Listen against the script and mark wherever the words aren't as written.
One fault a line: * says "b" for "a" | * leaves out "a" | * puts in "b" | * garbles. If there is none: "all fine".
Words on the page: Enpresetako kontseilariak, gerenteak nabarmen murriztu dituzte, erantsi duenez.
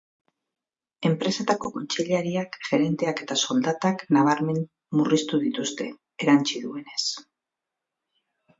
* puts in "eta soldatak"